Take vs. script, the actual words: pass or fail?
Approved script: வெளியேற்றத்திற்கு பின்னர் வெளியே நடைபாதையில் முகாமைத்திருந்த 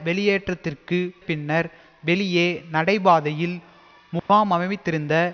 pass